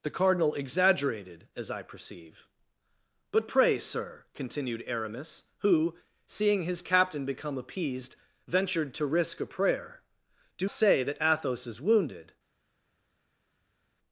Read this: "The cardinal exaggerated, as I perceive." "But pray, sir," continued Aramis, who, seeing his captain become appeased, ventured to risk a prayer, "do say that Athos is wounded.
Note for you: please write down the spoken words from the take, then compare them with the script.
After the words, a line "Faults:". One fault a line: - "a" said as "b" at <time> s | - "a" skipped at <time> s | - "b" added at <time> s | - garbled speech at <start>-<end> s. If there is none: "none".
"The cardinal exaggerated, as I perceive." "But pray, sir," continued Aramis, who, seeing his captain become appeased, ventured to risk a prayer, "do say that Athos is wounded.
Faults:
none